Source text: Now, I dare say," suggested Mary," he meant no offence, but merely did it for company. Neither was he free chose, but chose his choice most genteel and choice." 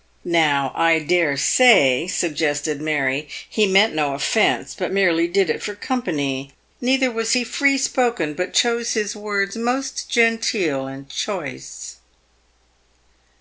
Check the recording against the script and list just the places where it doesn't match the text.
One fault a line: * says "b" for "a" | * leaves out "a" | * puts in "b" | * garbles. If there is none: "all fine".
* says "spoken" for "chose"
* says "words" for "choice"